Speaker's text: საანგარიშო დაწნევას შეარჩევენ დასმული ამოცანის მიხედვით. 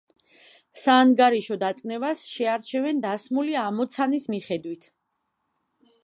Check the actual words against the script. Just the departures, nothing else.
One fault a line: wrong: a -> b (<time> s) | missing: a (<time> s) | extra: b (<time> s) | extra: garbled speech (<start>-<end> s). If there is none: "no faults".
no faults